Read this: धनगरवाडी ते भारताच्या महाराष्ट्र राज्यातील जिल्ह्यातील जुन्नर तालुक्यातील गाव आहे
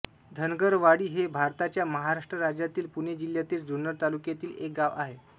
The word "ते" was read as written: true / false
false